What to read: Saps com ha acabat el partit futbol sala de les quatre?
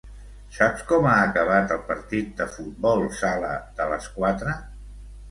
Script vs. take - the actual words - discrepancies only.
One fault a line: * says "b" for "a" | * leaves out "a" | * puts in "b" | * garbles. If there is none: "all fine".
* puts in "de"